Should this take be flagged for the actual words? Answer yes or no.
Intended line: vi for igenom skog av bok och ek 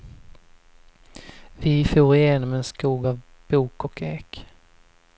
yes